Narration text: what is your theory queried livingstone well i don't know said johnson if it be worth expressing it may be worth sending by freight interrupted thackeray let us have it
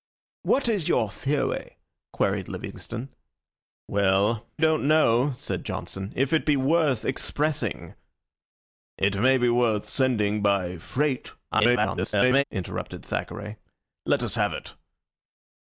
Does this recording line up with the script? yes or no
no